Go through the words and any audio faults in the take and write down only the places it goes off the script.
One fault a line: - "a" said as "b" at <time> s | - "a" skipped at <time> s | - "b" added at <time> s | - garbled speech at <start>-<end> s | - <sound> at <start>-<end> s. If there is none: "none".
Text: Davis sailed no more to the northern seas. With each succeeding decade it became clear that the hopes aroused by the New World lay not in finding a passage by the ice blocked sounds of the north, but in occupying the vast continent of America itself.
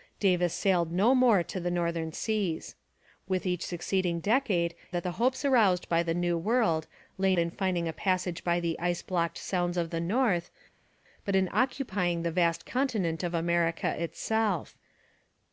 - "it became clear" skipped at 4.7 s
- "not" skipped at 7.3 s